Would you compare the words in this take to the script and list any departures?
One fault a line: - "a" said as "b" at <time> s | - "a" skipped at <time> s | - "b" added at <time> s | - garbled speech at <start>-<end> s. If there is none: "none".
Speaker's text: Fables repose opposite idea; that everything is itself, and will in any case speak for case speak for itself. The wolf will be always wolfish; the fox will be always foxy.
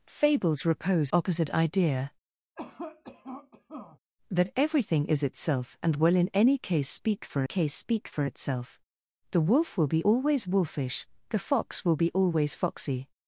none